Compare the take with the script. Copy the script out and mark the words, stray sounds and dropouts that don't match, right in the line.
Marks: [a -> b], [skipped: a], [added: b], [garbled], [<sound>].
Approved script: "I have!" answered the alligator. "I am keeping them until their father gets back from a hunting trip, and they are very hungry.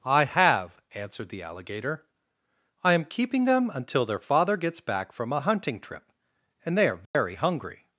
"I have!" answered the alligator. "I am keeping them until their father gets back from a hunting trip, and they are very [dropout] hungry.